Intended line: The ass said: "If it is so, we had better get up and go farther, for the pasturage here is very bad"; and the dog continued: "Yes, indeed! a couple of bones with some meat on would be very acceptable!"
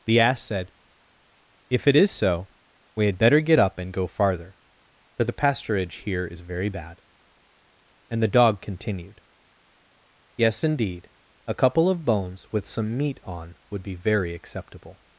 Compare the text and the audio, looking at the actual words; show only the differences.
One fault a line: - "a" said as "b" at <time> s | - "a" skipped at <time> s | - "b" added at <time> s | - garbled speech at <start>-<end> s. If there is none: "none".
none